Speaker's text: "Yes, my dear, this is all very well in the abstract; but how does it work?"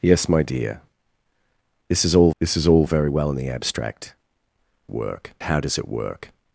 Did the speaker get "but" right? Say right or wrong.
wrong